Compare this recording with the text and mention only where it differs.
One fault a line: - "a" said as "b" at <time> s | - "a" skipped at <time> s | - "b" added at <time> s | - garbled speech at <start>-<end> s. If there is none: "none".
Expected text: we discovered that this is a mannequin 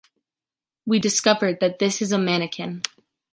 none